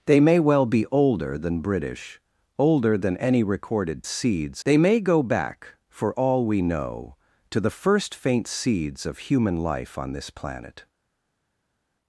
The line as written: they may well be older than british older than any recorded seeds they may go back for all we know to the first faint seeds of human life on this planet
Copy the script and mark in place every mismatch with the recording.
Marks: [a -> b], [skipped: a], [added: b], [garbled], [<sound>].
they may well be older than british older than any recorded seeds they may go back for all we know to the first faint seeds of human life on this planet